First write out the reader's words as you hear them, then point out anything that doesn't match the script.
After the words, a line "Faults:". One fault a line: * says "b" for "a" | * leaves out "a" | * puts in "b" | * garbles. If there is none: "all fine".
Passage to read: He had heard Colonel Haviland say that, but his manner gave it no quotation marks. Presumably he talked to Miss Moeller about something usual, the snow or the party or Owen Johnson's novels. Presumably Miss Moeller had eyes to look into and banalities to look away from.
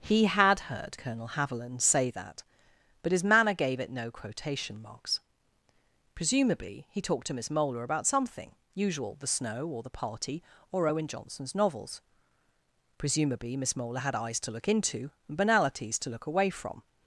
He had heard Colonel Haviland say that, but his manner gave it no quotation marks. Presumably he talked to Miss Moeller about something usual, the snow or the party or Owen Johnson's novels. Presumably Miss Moeller had eyes to look into and banalities to look away from.
Faults:
all fine